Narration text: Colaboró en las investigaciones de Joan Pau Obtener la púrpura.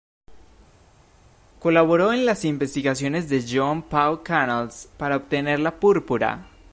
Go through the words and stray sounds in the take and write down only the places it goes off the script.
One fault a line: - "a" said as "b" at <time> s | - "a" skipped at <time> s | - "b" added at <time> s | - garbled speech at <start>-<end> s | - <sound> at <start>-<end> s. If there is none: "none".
- "Canals para" added at 4.2 s